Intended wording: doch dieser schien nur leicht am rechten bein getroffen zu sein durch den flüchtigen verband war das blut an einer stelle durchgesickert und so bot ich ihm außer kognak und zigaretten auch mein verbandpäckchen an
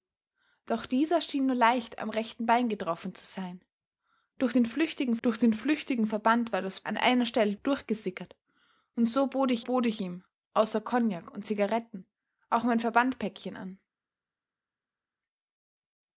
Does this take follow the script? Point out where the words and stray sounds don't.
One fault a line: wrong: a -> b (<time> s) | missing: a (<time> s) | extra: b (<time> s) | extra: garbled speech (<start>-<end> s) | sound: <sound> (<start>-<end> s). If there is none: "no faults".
extra: durch den flüchtigen (5.2 s)
missing: blut (6.8 s)
extra: bot ich (9.6 s)